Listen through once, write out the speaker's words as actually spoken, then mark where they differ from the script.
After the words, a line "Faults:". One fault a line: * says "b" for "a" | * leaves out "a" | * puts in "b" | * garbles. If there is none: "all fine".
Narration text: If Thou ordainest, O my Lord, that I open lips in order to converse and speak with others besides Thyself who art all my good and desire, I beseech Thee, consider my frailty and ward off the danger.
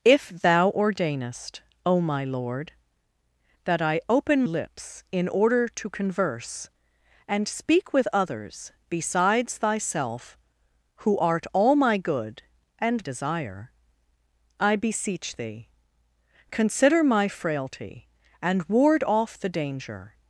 If Thou ordainest, O my Lord, that I open lips in order to converse and speak with others besides Thyself who art all my good and desire, I beseech Thee, consider my frailty and ward off the danger.
Faults:
all fine